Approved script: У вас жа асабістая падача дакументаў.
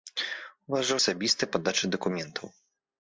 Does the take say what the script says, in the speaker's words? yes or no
yes